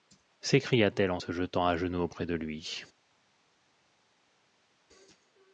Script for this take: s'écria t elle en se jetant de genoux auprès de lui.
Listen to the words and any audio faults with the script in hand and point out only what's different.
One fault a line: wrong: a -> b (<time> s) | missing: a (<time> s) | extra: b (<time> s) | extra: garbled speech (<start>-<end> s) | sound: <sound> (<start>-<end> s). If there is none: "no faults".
wrong: de -> à (1.6 s)